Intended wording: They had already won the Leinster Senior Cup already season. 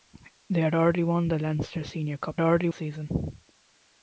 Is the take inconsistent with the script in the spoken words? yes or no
no